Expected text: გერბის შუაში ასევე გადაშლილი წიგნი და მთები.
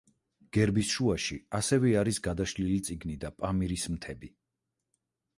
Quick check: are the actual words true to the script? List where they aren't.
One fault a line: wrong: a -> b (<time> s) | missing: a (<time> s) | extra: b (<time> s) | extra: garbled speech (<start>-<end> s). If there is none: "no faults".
extra: არის (2.0 s)
extra: პამირის (3.4 s)